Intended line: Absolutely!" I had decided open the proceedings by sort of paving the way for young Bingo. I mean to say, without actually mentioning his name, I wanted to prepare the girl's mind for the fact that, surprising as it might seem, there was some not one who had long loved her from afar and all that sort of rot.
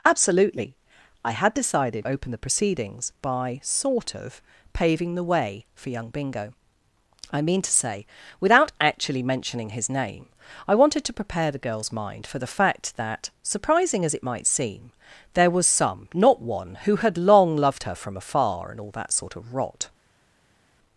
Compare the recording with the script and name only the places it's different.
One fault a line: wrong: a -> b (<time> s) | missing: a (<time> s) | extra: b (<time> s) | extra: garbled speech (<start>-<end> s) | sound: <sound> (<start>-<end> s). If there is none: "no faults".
no faults